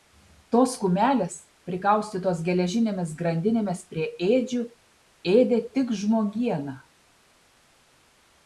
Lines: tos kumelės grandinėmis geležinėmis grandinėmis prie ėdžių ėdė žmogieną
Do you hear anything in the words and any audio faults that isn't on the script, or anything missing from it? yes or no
yes